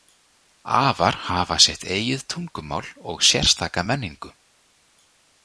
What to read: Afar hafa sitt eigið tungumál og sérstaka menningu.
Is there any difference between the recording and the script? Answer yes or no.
no